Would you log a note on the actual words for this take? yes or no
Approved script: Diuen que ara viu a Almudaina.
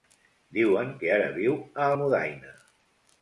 no